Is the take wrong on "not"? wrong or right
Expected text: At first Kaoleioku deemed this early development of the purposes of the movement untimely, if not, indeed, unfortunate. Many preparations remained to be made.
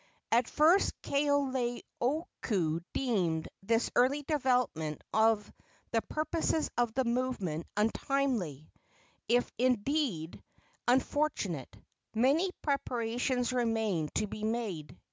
wrong